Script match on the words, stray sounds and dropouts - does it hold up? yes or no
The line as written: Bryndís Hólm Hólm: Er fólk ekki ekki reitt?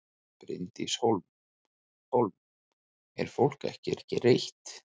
yes